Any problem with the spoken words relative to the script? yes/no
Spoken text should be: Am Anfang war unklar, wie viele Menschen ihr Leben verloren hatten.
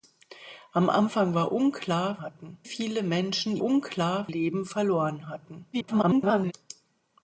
yes